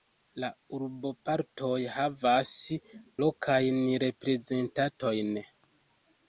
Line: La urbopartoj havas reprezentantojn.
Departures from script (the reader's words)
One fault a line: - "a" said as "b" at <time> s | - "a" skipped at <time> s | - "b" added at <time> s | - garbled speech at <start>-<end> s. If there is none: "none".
- "lokajn" added at 3.3 s